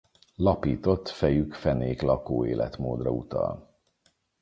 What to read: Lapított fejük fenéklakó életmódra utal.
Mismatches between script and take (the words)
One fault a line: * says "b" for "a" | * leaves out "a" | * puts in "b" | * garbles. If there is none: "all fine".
all fine